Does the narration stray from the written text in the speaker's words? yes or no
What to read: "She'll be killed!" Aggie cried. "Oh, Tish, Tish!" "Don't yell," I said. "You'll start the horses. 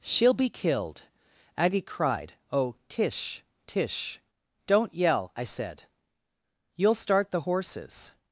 no